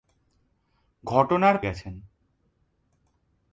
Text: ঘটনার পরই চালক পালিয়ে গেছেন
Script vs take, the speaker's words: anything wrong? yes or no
yes